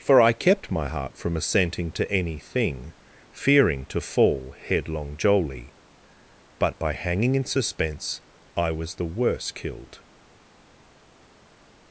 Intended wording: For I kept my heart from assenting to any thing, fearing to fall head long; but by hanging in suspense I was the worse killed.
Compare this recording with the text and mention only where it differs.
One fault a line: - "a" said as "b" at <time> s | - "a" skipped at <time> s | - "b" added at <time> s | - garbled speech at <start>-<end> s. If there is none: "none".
- "head long" said as "headlong jolly" at 4.6 s